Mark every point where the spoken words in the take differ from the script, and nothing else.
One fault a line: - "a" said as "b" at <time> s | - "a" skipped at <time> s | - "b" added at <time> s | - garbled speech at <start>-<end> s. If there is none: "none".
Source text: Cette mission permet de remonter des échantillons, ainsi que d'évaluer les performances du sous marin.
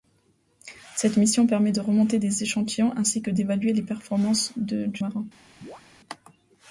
- "sous" skipped at 5.0 s